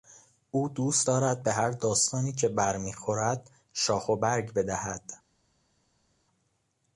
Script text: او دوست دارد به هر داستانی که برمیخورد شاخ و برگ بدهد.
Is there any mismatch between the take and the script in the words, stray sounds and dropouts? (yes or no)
no